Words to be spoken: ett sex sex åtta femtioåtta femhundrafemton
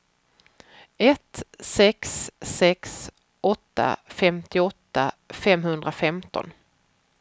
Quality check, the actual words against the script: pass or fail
pass